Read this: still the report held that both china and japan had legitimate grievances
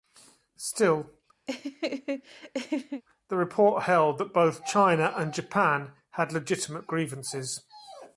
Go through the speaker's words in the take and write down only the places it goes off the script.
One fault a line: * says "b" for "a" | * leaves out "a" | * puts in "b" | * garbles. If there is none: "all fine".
all fine